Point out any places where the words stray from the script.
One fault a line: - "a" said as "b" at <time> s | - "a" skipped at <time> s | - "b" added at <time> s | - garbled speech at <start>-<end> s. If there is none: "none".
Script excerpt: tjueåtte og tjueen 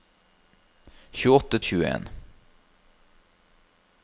none